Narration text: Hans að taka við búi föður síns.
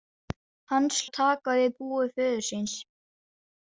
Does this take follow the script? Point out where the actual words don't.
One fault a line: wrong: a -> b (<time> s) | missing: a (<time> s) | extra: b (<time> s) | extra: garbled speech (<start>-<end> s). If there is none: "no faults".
no faults